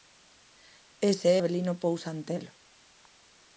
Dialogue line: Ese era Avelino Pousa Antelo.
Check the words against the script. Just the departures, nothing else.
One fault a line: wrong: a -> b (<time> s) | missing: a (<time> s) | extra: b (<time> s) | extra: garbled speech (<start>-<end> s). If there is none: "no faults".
missing: era (1.3 s)